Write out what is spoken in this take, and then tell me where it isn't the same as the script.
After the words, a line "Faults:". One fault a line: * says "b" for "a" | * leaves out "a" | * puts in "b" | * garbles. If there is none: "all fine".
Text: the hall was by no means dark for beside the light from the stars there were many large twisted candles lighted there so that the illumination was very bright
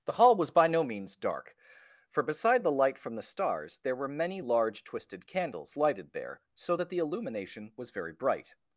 the hall was by no means dark for beside the light from the stars there were many large twisted candles lighted there so that the illumination was very bright
Faults:
all fine